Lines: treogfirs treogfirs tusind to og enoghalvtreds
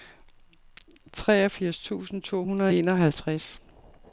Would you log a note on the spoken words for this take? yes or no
yes